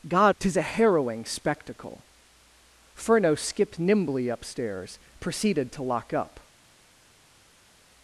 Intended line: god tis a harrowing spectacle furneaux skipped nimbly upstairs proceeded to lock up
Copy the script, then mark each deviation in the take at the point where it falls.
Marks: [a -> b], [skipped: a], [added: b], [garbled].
god tis a harrowing spectacle furneaux skipped nimbly upstairs proceeded to lock up